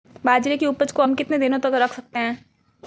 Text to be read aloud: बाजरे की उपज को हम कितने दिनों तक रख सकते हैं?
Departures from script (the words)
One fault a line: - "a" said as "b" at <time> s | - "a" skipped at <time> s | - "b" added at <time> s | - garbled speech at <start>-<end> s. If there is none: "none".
none